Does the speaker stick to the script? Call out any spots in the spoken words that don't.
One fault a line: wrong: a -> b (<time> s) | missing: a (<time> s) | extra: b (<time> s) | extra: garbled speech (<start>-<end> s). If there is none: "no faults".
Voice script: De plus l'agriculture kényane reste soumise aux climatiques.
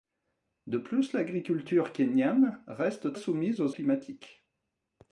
no faults